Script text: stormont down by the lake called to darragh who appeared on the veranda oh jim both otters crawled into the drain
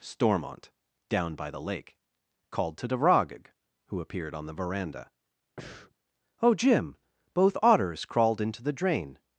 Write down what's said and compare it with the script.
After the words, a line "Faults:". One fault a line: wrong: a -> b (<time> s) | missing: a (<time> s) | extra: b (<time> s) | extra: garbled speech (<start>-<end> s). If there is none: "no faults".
stormont down by the lake called to darragh who appeared on the veranda oh jim both otters crawled into the drain
Faults:
no faults